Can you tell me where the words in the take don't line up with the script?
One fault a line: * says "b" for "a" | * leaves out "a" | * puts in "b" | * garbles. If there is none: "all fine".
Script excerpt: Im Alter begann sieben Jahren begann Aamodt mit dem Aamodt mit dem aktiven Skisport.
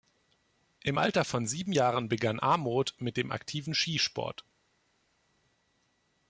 * says "von" for "begann"
* leaves out "Aamodt mit dem"